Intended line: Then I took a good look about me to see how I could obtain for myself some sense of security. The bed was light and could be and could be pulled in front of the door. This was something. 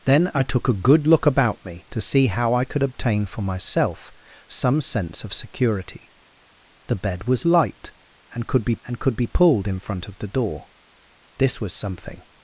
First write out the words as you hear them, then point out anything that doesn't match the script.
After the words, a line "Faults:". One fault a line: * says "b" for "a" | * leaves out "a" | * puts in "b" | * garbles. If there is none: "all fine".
Then I took a good look about me to see how I could obtain for myself some sense of security. The bed was light and could be and could be pulled in front of the door. This was something.
Faults:
all fine